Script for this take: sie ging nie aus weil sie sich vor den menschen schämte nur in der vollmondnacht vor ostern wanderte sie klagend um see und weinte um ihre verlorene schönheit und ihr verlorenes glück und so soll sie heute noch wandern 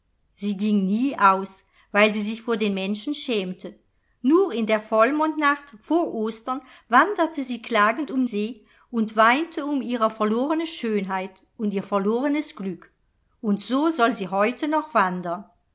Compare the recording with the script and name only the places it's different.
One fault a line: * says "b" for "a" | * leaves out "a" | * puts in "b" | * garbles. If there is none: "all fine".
all fine